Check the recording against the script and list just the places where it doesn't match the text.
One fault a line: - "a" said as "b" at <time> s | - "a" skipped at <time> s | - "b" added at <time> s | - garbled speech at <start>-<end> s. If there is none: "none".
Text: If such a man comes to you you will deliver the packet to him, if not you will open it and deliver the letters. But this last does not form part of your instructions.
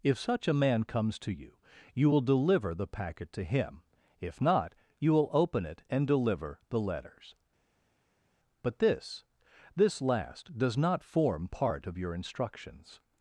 - "this" added at 9.7 s